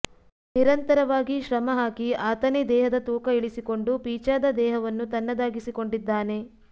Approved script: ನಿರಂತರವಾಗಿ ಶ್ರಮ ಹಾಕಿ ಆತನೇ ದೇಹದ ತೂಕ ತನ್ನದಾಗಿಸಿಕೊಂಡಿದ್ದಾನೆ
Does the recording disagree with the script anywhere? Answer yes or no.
yes